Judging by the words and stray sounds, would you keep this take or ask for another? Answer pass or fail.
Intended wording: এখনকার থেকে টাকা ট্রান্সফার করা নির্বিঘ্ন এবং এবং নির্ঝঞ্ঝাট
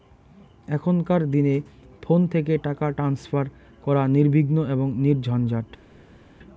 fail